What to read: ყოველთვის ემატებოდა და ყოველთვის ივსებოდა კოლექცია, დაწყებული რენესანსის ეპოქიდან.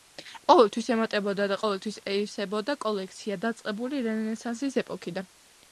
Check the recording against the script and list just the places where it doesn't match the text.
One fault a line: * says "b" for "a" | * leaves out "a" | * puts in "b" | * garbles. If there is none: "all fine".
all fine